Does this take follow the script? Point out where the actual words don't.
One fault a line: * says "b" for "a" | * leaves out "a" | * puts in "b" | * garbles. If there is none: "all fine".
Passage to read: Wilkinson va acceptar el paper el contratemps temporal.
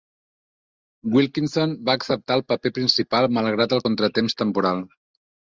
* puts in "principal malgrat"